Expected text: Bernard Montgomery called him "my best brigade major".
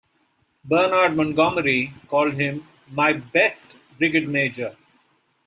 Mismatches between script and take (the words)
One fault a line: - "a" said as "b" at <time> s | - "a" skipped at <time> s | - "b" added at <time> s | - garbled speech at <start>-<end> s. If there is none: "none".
none